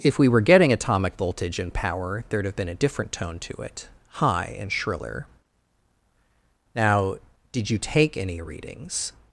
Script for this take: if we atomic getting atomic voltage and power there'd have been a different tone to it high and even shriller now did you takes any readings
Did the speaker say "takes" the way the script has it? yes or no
no